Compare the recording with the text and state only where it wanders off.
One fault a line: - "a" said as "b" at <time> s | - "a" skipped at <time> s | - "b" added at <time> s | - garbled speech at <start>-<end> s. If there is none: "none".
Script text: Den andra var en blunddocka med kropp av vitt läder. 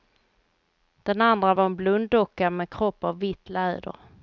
none